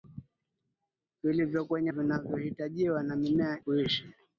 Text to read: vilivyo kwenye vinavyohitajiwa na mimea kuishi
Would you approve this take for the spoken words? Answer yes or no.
yes